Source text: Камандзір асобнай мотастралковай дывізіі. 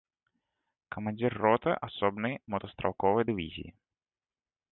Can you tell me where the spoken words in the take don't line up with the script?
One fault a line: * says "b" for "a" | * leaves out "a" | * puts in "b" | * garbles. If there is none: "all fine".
* puts in "роты"